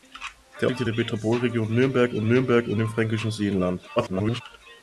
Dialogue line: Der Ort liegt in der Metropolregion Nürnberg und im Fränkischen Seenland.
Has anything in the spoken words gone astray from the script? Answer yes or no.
yes